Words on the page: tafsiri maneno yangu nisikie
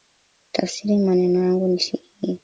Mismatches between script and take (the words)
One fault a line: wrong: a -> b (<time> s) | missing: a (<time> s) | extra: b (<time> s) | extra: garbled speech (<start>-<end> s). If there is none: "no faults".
no faults